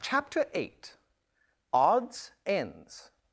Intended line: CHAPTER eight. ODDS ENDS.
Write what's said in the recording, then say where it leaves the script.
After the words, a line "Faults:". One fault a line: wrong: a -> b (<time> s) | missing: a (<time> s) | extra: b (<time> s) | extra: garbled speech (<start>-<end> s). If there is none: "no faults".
CHAPTER eight. ODDS ENDS.
Faults:
no faults